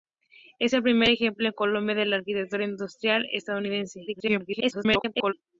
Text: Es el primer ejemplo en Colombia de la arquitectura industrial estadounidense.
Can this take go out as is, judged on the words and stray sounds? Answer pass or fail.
fail